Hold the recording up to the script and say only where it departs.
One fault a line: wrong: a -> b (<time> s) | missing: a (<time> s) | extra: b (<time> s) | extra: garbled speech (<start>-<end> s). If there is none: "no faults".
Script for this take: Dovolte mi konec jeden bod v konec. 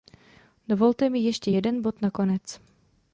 wrong: konec -> ještě (1.2 s)
wrong: v -> na (2.0 s)